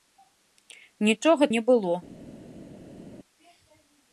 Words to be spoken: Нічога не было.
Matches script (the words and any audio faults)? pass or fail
pass